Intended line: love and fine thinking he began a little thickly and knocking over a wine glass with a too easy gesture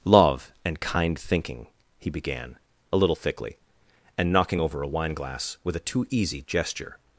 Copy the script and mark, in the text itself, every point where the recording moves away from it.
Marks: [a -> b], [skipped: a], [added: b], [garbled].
love and [fine -> kind] thinking he began a little thickly and knocking over a wine glass with a too easy gesture